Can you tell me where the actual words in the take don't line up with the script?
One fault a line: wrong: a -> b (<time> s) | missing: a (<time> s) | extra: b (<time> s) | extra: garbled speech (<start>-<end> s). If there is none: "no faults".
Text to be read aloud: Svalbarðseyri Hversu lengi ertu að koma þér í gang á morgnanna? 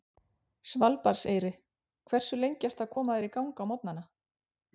no faults